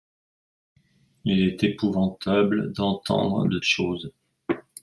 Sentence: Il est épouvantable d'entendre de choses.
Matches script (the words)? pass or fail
pass